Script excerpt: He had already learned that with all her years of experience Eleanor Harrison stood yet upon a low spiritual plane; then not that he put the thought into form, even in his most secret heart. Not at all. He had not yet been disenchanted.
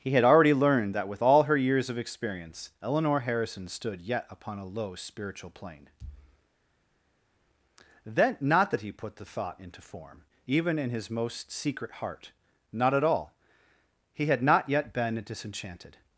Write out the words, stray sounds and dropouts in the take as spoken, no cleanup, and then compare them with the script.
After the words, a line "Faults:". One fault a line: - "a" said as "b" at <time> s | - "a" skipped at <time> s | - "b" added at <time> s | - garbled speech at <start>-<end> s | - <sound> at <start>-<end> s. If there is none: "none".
He had already learned that with all her years of experience Eleanor Harrison stood yet upon a low spiritual plane; then not that he put the thought into form, even in his most secret heart. Not at all. He had not yet been disenchanted.
Faults:
none